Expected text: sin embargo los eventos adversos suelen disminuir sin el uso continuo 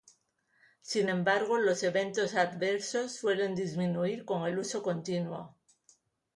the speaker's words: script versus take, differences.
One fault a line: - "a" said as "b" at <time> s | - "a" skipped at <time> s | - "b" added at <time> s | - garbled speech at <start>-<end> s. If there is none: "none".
- "sin" said as "con" at 4.2 s